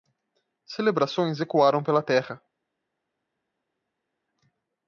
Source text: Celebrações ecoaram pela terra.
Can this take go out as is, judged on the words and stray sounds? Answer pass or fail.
pass